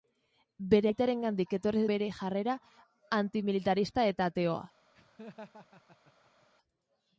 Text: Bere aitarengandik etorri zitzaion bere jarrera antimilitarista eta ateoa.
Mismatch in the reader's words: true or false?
true